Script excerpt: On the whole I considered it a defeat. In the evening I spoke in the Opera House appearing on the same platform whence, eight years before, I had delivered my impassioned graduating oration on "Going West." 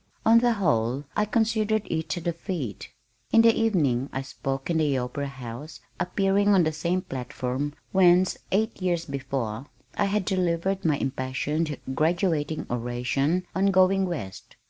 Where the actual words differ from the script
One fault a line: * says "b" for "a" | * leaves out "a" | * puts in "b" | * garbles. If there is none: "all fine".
all fine